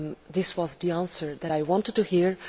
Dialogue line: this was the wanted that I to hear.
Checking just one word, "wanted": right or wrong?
wrong